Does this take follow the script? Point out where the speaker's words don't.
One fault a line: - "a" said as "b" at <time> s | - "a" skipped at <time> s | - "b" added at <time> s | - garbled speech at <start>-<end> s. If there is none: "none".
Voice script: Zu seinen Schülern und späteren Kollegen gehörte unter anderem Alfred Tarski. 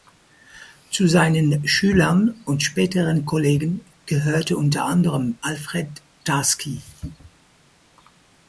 none